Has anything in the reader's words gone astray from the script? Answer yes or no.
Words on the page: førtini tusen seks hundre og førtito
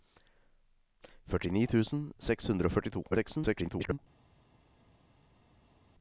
yes